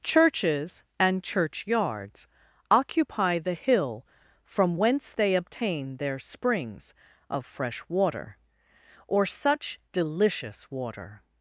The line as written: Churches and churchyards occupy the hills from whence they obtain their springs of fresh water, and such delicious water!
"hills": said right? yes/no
no